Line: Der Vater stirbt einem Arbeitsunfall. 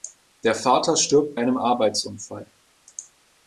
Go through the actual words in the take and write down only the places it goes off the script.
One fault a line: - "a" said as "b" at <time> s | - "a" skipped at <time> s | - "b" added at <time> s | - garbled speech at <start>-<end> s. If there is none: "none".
none